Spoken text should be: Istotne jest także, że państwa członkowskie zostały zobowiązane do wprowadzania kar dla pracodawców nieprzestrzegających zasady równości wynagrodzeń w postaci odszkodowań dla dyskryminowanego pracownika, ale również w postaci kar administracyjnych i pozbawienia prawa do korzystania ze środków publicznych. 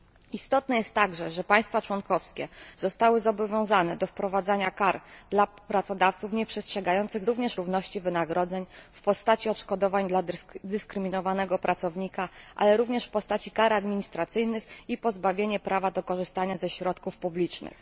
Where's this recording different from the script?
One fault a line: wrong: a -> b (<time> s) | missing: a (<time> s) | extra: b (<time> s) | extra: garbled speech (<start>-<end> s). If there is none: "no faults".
wrong: zasady -> również (7.2 s)